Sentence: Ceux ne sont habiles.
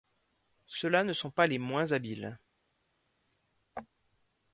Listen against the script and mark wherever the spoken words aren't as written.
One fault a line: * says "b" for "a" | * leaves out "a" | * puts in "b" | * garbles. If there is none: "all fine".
* puts in "là"
* puts in "pas les moins"